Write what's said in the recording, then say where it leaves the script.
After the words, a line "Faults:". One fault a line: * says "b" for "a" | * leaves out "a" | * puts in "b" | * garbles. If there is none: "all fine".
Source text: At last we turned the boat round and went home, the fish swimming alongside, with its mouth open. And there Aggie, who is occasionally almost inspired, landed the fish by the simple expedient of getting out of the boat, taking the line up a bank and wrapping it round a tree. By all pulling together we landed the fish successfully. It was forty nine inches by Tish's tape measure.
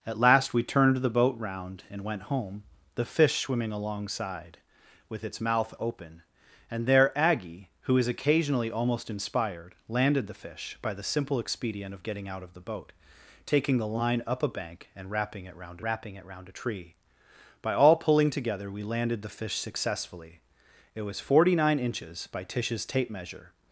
At last we turned the boat round and went home, the fish swimming alongside, with its mouth open. And there Aggie, who is occasionally almost inspired, landed the fish by the simple expedient of getting out of the boat, taking the line up a bank and wrapping it round wrapping it round a tree. By all pulling together we landed the fish successfully. It was forty nine inches by Tish's tape measure.
Faults:
* puts in "wrapping it round"